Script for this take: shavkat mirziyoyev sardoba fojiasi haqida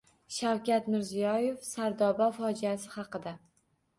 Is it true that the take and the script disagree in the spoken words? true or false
false